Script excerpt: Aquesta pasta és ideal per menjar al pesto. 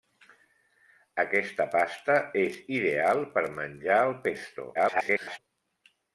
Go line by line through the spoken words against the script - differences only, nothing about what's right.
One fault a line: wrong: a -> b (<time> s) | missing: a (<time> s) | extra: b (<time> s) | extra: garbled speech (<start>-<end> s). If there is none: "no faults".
extra: garbled speech (4.7-5.4 s)